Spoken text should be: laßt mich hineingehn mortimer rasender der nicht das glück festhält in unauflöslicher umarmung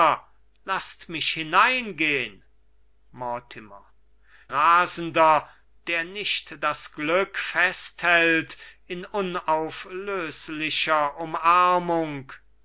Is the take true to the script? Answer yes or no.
yes